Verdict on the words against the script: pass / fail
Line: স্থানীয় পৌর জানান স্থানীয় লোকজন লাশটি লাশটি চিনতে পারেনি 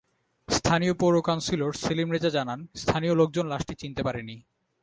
fail